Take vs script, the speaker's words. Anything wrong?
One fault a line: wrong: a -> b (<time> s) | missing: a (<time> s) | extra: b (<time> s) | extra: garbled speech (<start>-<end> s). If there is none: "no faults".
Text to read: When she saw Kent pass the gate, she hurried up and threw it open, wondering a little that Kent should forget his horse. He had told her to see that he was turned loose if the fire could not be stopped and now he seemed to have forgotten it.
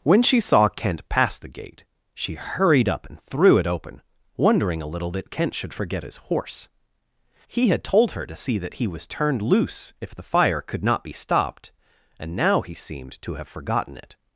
no faults